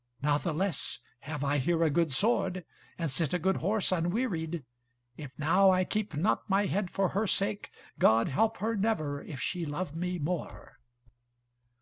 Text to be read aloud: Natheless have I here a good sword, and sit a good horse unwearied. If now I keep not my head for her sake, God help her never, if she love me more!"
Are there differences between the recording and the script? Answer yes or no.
no